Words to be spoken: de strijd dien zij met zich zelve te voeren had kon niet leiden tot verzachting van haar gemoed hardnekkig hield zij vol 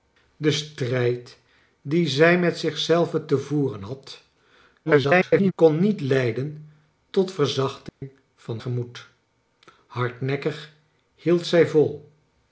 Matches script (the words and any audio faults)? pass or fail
fail